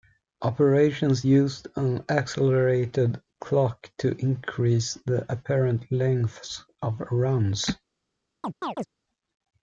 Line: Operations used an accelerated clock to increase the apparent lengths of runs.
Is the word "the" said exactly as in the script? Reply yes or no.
yes